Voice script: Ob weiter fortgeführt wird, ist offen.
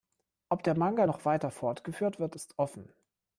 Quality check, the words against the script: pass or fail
fail